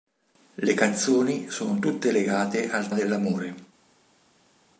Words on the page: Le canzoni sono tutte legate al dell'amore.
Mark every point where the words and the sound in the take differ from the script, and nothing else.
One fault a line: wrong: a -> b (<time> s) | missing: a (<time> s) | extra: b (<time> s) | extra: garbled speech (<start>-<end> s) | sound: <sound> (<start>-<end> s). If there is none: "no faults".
no faults